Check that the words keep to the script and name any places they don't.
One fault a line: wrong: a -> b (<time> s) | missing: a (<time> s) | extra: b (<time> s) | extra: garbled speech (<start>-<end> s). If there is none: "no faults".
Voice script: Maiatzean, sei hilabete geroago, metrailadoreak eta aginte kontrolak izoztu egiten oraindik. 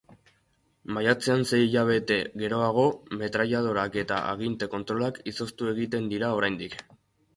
extra: dira (6.2 s)